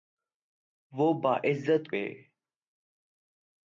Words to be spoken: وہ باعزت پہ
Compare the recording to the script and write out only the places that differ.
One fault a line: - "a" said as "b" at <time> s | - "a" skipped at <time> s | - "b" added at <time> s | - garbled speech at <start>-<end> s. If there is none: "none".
none